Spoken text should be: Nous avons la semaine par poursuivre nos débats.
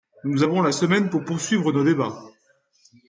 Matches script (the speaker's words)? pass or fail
fail